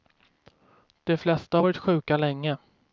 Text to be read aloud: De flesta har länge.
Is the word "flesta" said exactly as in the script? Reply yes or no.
yes